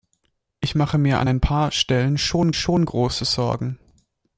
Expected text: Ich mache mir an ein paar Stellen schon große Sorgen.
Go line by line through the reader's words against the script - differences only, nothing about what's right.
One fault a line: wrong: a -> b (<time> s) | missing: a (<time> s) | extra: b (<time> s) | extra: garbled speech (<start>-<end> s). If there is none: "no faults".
extra: schon (2.5 s)